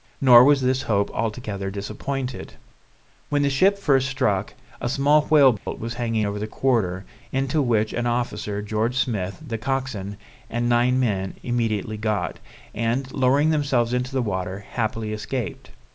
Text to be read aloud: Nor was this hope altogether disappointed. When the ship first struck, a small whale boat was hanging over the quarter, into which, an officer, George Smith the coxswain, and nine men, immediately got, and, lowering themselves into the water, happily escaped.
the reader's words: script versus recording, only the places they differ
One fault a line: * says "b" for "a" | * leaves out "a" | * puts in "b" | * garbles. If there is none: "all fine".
all fine